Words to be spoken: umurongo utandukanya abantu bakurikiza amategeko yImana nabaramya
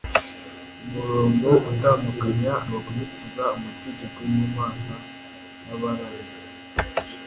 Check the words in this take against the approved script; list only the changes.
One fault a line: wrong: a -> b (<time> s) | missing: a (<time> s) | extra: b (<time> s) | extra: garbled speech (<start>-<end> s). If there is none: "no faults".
missing: abantu (2.5 s)